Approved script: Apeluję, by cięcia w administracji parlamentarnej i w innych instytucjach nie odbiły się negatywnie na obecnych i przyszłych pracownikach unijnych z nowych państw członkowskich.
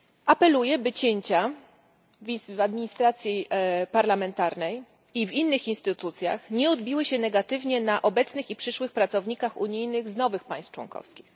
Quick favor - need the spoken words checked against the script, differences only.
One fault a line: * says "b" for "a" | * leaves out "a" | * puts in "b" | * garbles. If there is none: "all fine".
all fine